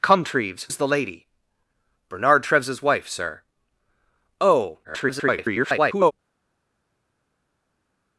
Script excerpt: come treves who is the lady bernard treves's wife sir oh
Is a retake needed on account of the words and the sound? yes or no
yes